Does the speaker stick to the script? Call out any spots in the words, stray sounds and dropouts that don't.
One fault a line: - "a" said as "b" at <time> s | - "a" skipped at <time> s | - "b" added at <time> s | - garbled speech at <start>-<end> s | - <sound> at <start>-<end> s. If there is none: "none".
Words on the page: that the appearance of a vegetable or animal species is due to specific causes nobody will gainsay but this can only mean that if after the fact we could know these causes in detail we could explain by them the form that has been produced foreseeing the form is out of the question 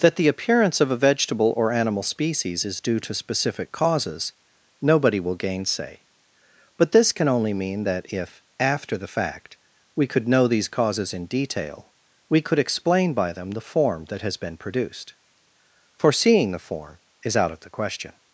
none